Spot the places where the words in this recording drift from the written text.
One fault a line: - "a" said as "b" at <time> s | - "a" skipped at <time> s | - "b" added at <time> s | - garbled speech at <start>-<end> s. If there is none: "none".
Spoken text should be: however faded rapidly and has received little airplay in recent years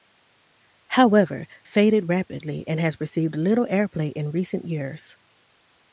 none